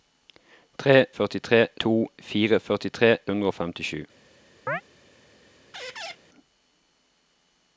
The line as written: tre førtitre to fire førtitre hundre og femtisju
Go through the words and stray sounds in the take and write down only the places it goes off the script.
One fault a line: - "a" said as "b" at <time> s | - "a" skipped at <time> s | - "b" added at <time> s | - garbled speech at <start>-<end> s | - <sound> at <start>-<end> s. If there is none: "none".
- chirp at 4.7-4.8 s
- squeak at 5.7-6.2 s